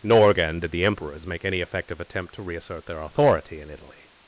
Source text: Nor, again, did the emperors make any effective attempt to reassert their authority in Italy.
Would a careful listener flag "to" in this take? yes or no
no